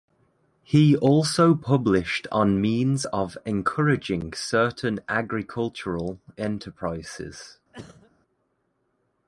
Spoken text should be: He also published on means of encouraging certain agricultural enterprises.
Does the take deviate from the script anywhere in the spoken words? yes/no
no